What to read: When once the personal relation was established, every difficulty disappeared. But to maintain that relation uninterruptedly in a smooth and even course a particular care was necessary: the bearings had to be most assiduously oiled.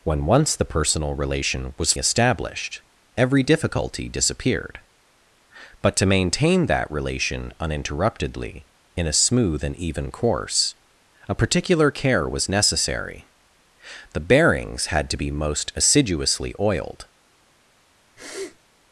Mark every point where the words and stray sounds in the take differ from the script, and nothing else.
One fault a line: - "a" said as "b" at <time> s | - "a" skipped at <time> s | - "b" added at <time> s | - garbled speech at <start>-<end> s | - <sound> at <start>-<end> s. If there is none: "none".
- sniff at 18.2-18.6 s